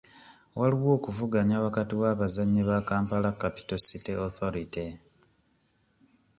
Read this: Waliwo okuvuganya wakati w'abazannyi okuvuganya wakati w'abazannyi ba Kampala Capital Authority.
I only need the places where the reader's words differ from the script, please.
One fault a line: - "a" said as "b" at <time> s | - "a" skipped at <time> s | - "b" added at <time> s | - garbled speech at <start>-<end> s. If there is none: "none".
- "okuvuganya wakati w'abazannyi" skipped at 2.6 s
- "City" added at 3.9 s